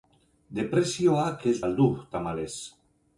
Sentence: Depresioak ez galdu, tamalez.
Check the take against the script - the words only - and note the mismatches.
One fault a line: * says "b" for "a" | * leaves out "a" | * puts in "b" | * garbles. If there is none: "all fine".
all fine